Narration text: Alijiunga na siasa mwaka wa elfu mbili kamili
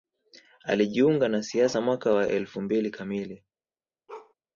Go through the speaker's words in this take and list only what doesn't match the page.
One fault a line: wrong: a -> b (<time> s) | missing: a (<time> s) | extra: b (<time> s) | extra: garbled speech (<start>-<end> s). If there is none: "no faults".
no faults